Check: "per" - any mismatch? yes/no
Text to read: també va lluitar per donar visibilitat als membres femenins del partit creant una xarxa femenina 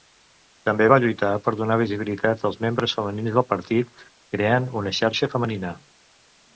no